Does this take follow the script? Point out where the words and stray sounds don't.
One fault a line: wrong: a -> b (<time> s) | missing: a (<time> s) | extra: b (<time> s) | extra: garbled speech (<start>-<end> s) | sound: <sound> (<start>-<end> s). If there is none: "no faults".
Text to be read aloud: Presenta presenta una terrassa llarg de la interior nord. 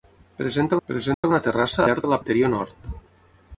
sound: dropout (1.1-1.2 s)